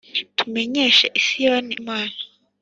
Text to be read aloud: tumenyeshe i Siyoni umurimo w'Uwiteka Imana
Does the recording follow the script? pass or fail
fail